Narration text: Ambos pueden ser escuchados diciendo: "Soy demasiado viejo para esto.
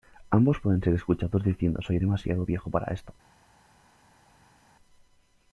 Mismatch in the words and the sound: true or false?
false